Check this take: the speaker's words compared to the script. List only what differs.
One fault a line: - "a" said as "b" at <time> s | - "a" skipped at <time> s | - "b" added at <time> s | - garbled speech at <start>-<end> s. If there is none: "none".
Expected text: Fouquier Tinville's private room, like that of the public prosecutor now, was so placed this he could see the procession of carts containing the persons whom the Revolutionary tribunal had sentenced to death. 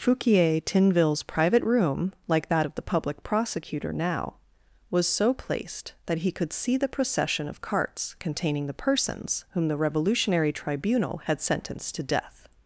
- "this" said as "that" at 6.1 s